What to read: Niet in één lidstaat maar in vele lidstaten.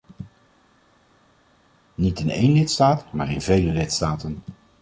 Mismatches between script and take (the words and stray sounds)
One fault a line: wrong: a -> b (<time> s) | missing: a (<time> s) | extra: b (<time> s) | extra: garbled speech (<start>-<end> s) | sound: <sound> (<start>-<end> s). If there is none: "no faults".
no faults